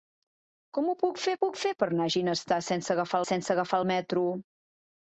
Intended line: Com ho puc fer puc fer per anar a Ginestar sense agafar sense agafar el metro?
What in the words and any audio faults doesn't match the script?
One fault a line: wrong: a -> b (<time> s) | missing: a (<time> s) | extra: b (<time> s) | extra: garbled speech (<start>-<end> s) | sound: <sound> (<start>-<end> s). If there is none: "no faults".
no faults